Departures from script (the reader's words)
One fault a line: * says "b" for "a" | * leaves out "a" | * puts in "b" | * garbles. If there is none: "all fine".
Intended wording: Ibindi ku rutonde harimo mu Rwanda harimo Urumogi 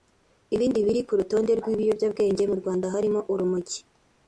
* puts in "biri"
* says "rw'ibiyobyabwenge" for "harimo"